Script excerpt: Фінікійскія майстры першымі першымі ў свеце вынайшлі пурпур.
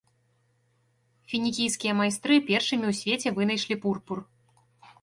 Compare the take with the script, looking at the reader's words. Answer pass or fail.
fail